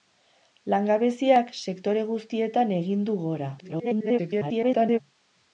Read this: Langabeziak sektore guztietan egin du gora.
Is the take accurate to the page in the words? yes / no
no